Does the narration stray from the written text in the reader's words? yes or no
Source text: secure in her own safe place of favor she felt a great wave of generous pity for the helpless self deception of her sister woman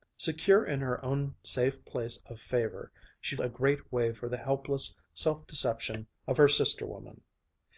yes